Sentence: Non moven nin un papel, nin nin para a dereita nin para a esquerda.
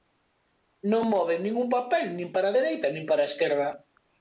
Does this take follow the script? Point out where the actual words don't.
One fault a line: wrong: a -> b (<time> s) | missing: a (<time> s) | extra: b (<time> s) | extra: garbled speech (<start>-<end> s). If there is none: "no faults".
missing: nin (2.3 s)